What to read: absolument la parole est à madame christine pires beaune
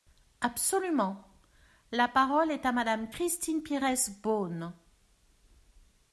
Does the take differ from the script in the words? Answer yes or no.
no